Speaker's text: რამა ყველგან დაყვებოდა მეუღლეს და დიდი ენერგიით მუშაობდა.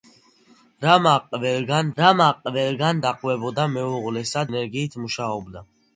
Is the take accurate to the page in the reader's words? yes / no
no